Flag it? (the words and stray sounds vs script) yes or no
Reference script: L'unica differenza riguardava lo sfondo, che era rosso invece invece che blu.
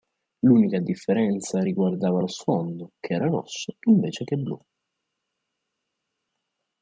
yes